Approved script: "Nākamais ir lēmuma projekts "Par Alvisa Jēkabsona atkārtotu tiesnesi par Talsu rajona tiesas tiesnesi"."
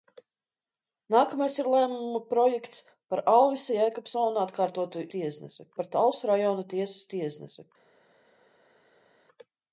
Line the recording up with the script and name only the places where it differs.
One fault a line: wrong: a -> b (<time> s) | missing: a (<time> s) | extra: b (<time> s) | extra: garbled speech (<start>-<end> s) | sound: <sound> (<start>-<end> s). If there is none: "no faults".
no faults